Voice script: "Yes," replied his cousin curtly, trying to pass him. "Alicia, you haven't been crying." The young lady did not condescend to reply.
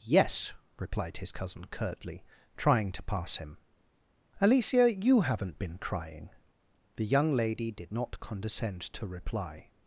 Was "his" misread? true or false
false